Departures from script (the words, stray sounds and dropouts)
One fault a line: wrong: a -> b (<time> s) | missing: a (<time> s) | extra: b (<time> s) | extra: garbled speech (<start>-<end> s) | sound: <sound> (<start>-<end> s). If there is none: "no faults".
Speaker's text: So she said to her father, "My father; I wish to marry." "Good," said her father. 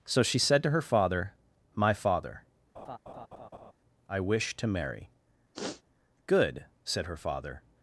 sound: laugh (2.7-3.7 s)
sound: sniff (5.5-5.8 s)